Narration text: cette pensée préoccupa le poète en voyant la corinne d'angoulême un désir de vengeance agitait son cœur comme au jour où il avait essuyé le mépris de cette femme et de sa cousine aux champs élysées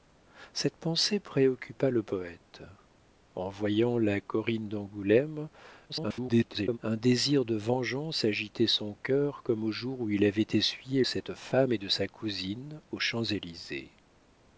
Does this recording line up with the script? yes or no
no